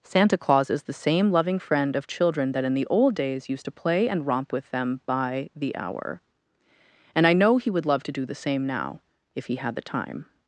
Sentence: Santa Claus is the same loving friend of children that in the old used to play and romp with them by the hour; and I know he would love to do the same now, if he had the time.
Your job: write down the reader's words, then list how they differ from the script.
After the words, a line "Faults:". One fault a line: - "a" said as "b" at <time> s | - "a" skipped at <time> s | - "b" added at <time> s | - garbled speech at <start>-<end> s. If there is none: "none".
Santa Claus is the same loving friend of children that in the old days used to play and romp with them by the hour; and I know he would love to do the same now, if he had the time.
Faults:
- "days" added at 3.1 s